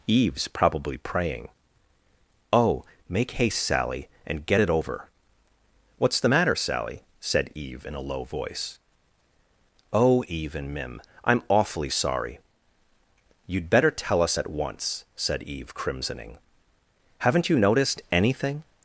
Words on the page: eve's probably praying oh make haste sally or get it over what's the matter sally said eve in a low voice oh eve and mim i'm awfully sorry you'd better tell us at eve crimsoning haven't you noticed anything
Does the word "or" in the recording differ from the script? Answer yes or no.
yes